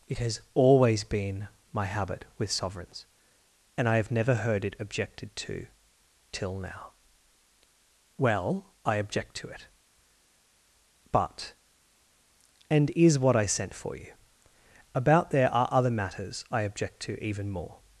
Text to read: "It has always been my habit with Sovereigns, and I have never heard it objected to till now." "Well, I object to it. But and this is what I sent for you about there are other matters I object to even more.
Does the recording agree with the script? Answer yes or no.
no